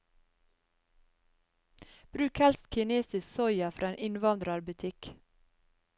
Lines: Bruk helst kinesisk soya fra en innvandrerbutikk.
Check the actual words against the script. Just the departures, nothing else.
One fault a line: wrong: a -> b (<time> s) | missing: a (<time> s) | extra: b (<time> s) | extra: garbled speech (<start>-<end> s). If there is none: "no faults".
no faults